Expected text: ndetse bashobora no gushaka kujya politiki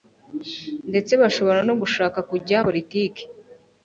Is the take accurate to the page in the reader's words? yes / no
yes